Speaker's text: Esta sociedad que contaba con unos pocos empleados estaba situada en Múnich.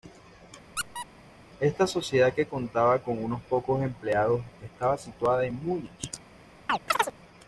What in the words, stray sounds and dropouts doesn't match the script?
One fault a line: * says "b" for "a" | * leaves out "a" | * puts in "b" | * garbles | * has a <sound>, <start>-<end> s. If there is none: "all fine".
* has a squeak, 0.8-1.1 s
* has a chirp, 6.7-7.1 s